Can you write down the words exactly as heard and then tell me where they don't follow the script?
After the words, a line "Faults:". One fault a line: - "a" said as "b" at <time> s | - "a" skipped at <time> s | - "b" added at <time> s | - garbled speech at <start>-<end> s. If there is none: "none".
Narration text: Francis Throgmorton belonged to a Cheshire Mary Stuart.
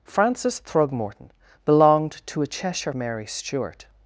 Francis Throgmorton belonged to a Cheshire Mary Stuart.
Faults:
none